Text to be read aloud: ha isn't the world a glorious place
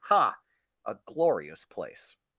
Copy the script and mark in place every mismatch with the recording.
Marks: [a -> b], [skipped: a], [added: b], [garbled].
ha [skipped: isn't the world] a glorious place